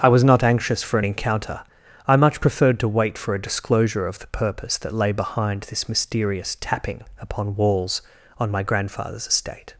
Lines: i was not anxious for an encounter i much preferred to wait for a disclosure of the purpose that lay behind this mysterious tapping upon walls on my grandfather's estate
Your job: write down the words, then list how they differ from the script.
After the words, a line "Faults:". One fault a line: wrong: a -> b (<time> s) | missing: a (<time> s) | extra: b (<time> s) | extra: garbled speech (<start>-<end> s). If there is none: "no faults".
i was not anxious for an encounter i much preferred to wait for a disclosure of the purpose that lay behind this mysterious tapping upon walls on my grandfather's estate
Faults:
no faults